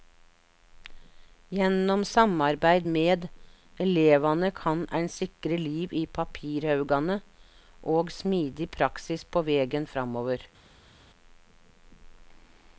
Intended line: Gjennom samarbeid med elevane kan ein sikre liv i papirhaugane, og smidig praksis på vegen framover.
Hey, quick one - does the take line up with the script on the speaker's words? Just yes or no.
yes